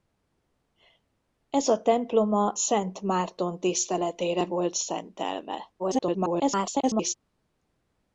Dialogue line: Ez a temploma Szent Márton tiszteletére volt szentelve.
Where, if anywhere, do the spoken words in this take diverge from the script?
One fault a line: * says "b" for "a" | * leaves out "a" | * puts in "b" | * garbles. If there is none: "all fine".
* garbles